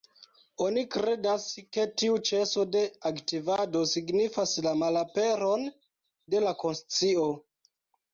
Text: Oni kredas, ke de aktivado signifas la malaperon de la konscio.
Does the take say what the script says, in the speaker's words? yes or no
no